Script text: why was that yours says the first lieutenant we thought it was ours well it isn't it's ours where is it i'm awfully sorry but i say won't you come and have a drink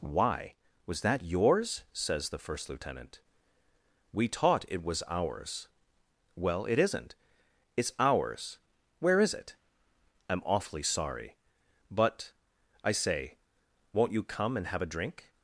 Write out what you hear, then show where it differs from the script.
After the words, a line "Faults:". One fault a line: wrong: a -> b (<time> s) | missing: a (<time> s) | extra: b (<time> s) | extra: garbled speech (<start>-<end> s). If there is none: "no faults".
why was that yours says the first lieutenant we taught it was ours well it isn't it's ours where is it i'm awfully sorry but i say won't you come and have a drink
Faults:
wrong: thought -> taught (4.3 s)